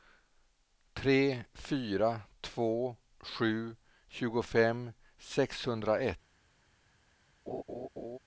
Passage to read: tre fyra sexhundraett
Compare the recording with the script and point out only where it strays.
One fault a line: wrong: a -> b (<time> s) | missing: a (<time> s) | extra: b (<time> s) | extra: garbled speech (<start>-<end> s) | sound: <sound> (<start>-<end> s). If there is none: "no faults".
extra: två sju tjugofem (2.4 s)
sound: laugh (7.5-8.2 s)